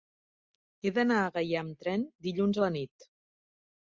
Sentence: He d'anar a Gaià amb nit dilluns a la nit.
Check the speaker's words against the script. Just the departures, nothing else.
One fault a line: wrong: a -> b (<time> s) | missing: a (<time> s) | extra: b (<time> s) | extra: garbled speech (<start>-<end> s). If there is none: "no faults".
wrong: nit -> tren (1.8 s)